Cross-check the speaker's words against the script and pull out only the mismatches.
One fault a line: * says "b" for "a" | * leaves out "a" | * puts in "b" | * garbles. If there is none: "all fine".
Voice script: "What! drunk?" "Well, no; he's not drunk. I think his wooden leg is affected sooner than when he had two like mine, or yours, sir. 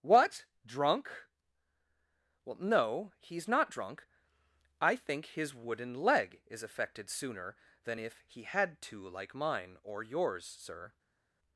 * says "if" for "when"